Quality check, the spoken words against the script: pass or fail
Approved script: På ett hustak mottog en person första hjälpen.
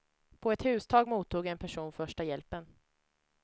pass